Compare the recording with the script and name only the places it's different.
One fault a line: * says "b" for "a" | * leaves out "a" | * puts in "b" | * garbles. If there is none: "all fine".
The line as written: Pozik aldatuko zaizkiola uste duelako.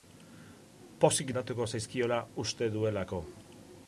all fine